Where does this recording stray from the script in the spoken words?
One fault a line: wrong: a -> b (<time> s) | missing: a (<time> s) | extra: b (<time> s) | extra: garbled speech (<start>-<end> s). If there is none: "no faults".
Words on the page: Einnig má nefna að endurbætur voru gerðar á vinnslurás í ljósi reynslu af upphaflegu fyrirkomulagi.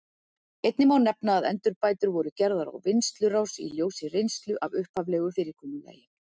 no faults